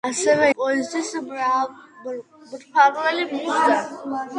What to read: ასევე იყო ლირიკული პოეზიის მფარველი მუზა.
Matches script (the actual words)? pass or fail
fail